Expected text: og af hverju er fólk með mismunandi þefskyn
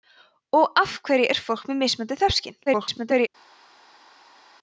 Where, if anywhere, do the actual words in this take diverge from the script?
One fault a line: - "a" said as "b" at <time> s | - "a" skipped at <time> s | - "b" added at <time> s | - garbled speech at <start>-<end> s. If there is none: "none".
- garbled speech at 2.7-3.3 s